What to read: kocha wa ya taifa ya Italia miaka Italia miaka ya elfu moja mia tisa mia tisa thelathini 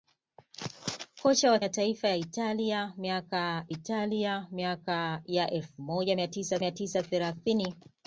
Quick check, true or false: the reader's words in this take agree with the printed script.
true